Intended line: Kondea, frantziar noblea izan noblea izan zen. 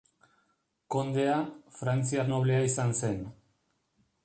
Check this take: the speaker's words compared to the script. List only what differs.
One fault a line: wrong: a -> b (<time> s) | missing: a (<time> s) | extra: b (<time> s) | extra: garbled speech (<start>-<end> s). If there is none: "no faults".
missing: noblea izan (3.0 s)